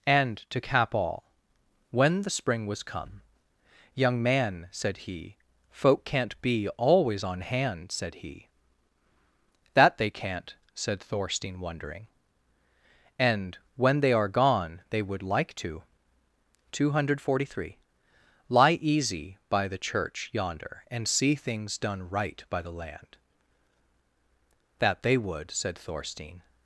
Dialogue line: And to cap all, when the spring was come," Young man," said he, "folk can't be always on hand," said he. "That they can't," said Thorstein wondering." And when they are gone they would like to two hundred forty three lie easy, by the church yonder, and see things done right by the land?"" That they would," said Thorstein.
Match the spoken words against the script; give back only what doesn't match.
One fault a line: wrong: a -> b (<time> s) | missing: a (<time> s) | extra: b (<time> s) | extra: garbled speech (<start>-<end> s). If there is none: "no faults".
no faults